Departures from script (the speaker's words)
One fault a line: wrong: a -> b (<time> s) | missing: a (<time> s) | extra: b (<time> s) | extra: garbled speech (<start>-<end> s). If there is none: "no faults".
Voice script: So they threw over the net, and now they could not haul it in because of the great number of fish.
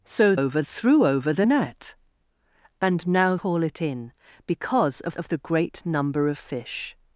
wrong: they -> over (0.3 s)
missing: they could not (3.4 s)
extra: of (5.1 s)